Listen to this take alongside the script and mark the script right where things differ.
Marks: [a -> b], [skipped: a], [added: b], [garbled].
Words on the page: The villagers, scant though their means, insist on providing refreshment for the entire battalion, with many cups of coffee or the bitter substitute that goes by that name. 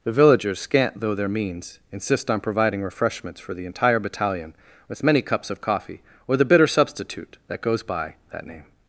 The villagers, scant though their means, insist on providing [refreshment -> refreshments] for the entire battalion, with many cups of coffee or the bitter substitute that goes by that name.